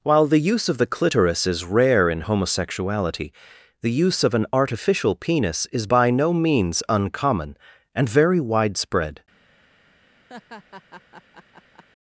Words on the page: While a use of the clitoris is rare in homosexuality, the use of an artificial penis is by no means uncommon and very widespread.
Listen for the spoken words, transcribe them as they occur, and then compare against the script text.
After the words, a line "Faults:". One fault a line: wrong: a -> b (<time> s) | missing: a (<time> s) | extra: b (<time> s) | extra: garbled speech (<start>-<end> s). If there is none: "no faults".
While the use of the clitoris is rare in homosexuality, the use of an artificial penis is by no means uncommon and very widespread.
Faults:
wrong: a -> the (0.2 s)